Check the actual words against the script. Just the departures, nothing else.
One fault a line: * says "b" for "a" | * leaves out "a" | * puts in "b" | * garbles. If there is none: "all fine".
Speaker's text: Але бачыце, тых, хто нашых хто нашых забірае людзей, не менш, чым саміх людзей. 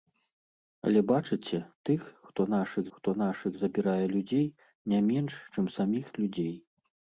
all fine